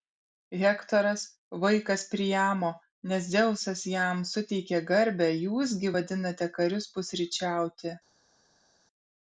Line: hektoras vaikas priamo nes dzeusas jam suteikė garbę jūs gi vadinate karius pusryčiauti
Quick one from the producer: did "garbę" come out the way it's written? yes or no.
yes